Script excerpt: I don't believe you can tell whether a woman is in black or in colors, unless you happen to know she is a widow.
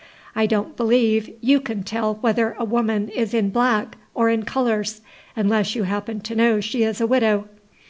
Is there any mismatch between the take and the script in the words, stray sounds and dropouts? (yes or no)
no